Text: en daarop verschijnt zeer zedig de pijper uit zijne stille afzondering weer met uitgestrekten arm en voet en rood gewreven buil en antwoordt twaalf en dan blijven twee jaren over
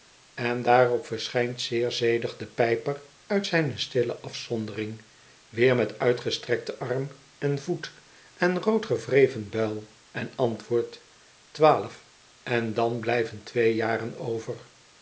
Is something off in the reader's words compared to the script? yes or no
no